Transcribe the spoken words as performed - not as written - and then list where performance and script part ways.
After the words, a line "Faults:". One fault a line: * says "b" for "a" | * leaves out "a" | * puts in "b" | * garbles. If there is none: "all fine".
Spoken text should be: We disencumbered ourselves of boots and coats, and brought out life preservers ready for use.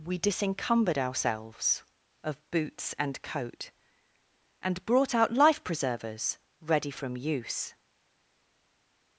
We disencumbered ourselves of boots and coat, and brought out life preservers ready from use.
Faults:
* says "coat" for "coats"
* says "from" for "for"